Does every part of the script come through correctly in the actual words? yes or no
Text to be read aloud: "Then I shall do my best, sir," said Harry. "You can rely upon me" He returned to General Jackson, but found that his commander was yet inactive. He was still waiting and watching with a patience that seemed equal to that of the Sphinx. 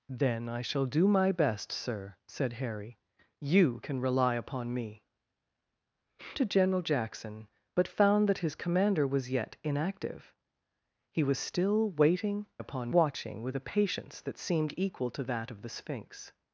no